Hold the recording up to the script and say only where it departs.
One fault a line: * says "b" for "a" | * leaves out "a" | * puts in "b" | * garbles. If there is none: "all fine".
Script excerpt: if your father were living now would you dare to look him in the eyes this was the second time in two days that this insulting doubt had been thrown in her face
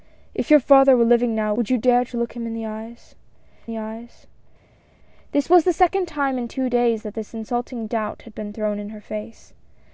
* puts in "the eyes"